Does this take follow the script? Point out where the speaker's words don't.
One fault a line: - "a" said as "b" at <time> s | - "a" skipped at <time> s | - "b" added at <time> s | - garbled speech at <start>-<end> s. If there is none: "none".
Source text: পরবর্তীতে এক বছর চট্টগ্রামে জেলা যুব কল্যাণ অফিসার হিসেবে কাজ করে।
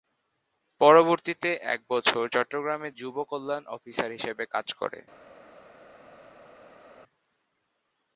- "জেলা" skipped at 2.9 s